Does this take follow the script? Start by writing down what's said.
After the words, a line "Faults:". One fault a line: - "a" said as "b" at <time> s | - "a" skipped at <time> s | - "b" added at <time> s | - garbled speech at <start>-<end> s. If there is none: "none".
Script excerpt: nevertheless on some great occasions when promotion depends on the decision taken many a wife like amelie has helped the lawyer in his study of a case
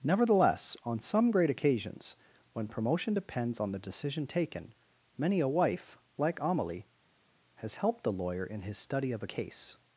nevertheless on some great occasions when promotion depends on the decision taken many a wife like amelie has helped the lawyer in his study of a case
Faults:
none